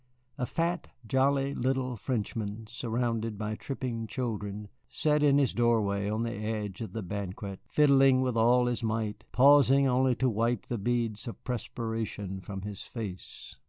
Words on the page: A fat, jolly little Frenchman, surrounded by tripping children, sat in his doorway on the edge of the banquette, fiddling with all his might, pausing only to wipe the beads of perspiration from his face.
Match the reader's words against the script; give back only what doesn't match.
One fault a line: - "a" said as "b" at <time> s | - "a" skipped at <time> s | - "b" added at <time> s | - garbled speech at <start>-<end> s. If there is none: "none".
none